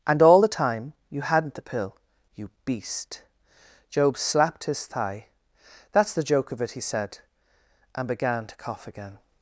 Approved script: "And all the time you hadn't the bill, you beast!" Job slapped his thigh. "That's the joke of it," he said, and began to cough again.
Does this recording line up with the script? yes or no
no